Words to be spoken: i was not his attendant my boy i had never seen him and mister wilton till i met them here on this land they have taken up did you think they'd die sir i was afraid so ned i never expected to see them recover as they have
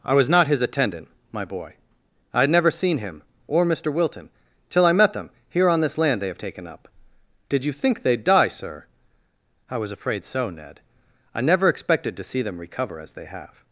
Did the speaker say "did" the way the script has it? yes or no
yes